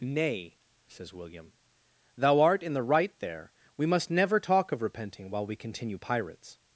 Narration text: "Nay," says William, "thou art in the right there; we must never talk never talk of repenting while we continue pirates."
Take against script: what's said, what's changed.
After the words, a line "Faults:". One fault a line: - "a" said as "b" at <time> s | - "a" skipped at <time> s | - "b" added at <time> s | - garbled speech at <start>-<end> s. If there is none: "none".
"Nay," says William, "thou art in the right there; we must never talk of repenting while we continue pirates."
Faults:
- "never talk" skipped at 4.7 s